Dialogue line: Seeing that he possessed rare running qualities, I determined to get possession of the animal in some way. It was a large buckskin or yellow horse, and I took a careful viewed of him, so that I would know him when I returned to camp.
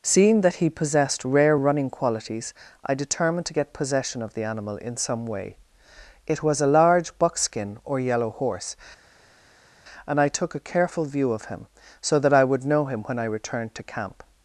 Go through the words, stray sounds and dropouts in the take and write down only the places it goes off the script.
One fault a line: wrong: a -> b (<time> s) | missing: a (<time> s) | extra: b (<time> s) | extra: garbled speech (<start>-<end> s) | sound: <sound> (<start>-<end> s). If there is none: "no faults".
wrong: viewed -> view (11.0 s)